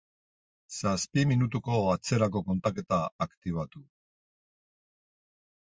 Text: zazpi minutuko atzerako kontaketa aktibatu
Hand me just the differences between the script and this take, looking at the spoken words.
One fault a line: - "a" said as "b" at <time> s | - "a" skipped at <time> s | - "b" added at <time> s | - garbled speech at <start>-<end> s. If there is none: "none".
none